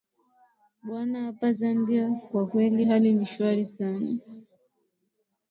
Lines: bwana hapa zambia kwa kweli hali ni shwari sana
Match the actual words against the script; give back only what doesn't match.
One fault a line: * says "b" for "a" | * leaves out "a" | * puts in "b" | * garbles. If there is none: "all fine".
all fine